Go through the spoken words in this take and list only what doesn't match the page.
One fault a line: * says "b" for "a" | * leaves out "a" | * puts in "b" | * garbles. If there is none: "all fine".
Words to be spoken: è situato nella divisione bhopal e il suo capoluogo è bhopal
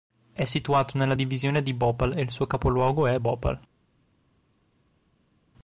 * puts in "di"